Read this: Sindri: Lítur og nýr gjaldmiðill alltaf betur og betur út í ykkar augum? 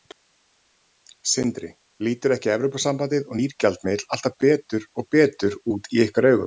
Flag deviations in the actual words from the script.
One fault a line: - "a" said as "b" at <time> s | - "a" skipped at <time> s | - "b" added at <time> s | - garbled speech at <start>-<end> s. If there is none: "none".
- "ekki Evrópusambandið" added at 2.4 s